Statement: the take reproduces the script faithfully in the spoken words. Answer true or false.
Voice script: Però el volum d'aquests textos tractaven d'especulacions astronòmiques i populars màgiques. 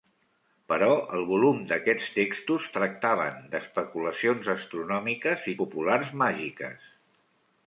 true